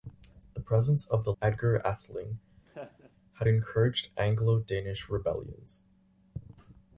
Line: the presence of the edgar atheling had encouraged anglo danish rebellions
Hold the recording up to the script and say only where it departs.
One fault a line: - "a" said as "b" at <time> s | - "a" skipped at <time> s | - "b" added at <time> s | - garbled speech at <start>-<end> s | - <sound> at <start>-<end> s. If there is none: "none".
- laugh at 2.7-3.1 s